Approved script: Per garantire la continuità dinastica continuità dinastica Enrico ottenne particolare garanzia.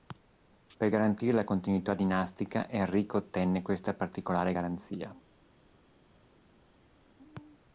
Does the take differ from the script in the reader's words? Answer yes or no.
yes